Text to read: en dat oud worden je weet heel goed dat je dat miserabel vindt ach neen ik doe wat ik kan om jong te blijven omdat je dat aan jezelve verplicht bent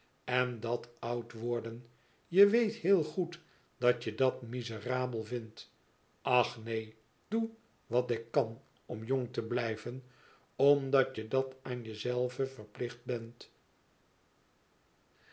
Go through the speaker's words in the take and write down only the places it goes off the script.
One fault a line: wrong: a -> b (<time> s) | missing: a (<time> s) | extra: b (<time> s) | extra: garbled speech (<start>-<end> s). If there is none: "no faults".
missing: ik (6.9 s)